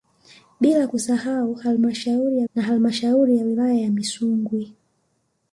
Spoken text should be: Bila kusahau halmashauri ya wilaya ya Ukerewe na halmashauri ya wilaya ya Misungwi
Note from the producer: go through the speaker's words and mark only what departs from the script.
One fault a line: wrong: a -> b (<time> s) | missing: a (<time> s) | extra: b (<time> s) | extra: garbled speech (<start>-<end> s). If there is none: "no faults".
missing: wilaya ya Ukerewe (2.5 s)